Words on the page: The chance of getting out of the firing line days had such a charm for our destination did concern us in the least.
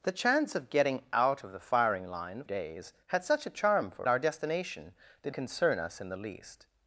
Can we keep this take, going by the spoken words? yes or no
yes